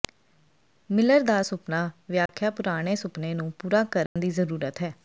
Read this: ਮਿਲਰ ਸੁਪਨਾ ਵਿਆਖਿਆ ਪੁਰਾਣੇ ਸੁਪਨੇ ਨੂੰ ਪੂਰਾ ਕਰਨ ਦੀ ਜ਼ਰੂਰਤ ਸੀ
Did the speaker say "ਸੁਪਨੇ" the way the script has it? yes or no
yes